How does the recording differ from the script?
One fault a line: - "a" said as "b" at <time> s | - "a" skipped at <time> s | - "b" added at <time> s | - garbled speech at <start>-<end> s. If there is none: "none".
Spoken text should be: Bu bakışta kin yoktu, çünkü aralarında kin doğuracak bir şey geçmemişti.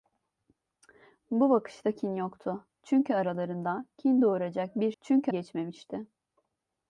- "şey" said as "çünkü" at 5.0 s